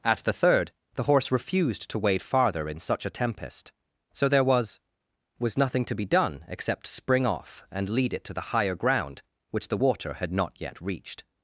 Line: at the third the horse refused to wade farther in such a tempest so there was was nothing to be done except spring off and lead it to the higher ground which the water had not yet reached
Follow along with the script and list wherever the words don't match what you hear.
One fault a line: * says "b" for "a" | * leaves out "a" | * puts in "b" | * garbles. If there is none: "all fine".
all fine